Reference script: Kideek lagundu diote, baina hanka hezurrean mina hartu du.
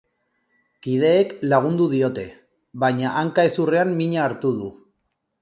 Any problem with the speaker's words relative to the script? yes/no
no